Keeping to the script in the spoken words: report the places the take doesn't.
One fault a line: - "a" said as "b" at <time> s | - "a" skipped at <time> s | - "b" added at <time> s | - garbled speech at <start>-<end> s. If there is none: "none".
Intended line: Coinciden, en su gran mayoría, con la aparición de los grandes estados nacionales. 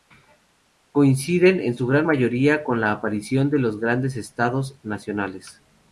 none